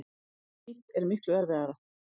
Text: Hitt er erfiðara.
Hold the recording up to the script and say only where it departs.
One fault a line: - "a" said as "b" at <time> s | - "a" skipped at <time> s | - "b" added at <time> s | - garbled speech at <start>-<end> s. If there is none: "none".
- "miklu" added at 1.1 s